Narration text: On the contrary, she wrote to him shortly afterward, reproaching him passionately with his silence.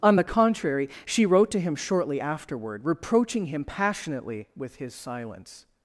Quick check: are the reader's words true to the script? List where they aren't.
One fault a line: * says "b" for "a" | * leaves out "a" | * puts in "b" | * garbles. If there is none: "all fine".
all fine